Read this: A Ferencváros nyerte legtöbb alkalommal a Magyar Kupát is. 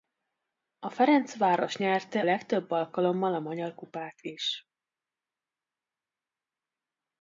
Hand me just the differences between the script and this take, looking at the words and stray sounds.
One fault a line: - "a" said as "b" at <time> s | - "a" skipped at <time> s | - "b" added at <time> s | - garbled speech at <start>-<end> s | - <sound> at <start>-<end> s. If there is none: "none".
none